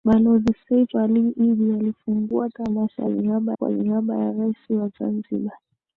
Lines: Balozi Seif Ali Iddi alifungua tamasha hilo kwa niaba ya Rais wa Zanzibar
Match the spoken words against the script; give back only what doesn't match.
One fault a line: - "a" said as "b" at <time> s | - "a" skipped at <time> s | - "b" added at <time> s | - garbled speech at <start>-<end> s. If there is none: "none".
- "hilo" said as "niaba" at 3.1 s